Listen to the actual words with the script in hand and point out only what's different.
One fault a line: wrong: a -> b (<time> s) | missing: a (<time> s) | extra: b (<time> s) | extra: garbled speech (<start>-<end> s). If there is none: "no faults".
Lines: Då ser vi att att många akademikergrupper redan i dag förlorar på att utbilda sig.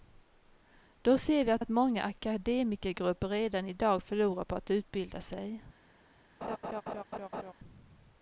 no faults